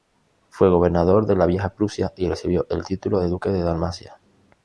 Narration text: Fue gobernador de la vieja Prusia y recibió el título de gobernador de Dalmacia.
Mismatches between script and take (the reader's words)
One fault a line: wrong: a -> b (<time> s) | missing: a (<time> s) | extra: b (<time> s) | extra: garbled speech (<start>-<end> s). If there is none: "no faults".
wrong: gobernador -> duque (3.3 s)